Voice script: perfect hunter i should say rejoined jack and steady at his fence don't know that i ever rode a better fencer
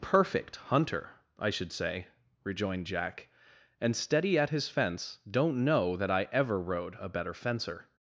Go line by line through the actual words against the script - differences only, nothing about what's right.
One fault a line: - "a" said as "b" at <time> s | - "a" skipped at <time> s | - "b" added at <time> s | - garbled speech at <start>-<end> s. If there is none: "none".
none